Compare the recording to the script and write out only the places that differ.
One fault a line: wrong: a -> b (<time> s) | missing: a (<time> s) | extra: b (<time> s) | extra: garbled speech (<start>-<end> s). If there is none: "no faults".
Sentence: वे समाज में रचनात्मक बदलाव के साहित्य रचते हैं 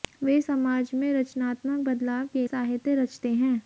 no faults